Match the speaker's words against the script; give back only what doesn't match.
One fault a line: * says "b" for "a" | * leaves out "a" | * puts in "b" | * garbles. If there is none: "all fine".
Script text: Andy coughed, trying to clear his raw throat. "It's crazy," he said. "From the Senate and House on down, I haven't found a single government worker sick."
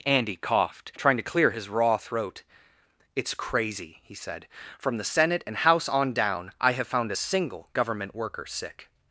* says "have" for "haven't"